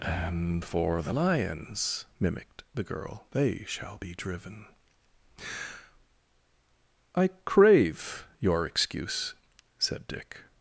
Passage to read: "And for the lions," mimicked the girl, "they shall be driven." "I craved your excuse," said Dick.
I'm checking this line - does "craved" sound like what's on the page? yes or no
no